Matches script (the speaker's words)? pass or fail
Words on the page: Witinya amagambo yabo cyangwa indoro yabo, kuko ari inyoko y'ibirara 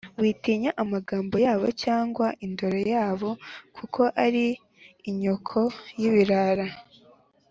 pass